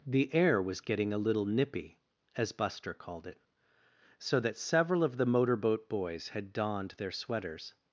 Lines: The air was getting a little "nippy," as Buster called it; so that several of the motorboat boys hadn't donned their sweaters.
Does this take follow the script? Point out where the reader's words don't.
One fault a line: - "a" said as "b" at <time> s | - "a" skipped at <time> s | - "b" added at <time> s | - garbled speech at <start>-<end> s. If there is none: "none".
- "hadn't" said as "had" at 6.3 s